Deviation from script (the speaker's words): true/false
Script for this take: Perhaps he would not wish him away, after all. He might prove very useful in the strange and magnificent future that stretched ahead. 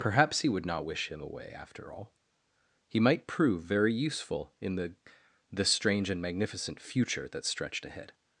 true